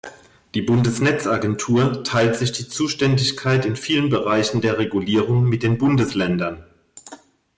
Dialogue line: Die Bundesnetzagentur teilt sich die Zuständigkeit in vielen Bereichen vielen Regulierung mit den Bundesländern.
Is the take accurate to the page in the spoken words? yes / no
no